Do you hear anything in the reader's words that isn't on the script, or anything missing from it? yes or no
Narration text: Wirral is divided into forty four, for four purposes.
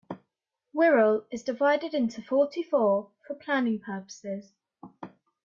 yes